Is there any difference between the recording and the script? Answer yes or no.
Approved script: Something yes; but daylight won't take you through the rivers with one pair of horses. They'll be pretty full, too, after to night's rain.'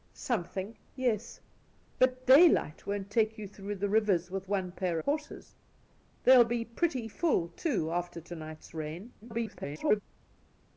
yes